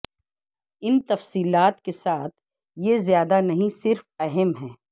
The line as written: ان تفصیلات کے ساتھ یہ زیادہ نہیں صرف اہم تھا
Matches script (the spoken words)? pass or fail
fail